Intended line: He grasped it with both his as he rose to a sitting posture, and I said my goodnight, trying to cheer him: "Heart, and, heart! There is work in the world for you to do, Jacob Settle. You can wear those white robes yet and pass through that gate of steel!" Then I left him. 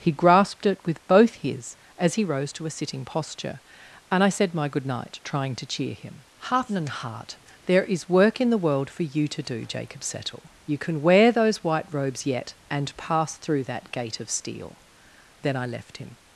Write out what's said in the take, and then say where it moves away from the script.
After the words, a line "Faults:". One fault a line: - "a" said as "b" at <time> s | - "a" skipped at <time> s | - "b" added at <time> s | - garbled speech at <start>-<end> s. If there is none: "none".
He grasped it with both his as he rose to a sitting posture, and I said my goodnight, trying to cheer him: "Heart, and, heart! There is work in the world for you to do, Jacob Settle. You can wear those white robes yet and pass through that gate of steel!" Then I left him.
Faults:
none